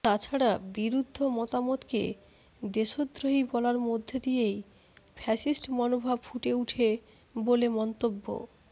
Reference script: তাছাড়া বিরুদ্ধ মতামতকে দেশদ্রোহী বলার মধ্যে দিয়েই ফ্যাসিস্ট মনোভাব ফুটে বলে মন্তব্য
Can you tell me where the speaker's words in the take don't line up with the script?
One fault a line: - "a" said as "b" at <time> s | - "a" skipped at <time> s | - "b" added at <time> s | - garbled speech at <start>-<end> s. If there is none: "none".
- "ওঠে" added at 6.5 s